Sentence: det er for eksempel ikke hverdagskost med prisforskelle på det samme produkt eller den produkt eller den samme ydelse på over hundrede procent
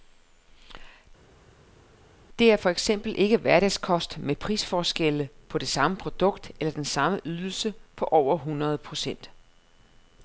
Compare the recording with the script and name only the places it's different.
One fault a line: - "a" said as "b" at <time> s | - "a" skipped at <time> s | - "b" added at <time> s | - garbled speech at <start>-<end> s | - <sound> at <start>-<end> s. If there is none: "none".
- "produkt eller den" skipped at 6.9 s